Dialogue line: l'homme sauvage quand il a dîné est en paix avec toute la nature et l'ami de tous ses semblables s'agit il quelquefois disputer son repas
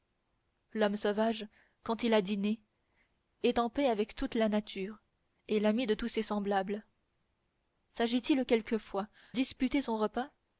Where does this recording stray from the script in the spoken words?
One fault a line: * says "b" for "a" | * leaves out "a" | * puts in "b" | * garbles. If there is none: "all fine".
all fine